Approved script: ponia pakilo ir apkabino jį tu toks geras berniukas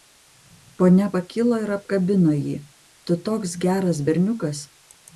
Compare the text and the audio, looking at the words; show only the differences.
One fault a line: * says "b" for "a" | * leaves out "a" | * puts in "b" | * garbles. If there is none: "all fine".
all fine